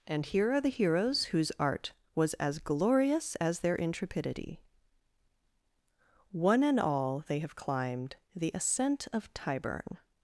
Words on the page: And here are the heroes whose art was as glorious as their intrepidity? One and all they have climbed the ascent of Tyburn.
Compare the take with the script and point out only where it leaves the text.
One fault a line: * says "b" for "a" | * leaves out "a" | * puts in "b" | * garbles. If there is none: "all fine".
all fine